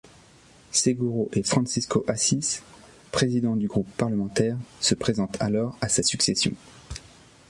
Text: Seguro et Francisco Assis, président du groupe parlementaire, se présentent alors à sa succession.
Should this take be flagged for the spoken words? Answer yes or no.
no